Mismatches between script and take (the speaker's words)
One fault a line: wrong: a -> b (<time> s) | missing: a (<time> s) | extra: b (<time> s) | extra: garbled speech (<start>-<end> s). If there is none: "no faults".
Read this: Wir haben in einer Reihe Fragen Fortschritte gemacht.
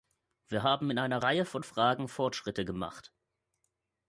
extra: von (1.4 s)